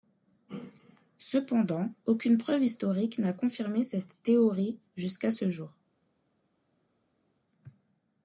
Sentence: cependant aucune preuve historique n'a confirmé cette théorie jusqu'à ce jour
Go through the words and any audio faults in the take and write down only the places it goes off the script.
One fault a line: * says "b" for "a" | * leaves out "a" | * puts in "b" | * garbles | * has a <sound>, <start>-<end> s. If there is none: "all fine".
all fine